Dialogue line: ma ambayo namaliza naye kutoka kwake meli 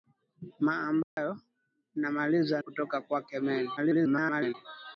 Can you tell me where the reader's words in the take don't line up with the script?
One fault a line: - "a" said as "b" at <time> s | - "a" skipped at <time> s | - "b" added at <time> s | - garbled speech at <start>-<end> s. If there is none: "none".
- "naye" skipped at 2.6 s
- garbled speech at 3.8-4.5 s